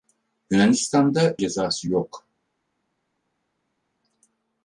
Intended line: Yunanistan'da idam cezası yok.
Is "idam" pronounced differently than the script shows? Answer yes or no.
yes